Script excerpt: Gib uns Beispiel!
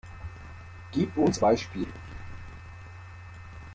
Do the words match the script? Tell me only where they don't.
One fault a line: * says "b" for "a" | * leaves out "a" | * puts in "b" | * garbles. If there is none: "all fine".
all fine